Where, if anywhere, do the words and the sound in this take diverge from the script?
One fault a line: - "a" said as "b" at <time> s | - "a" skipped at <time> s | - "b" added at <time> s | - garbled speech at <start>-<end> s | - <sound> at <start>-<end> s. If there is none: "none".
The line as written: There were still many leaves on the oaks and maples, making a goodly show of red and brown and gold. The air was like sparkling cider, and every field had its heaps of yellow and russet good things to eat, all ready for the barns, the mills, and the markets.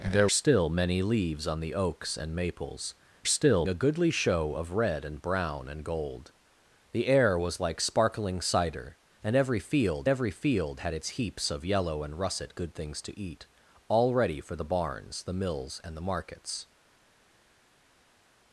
- "were" skipped at 0.3 s
- "making" said as "still" at 3.2 s
- "every field" added at 10.1 s